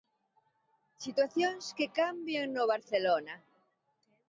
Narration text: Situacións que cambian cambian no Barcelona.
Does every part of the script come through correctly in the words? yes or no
no